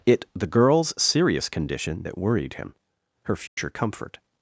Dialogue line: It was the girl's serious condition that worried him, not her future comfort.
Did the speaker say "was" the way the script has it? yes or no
no